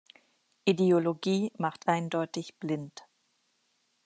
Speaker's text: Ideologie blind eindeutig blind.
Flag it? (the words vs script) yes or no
yes